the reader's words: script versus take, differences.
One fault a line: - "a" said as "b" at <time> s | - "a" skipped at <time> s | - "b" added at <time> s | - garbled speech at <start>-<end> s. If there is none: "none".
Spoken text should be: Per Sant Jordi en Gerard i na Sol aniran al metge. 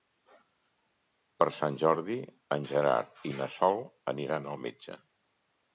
none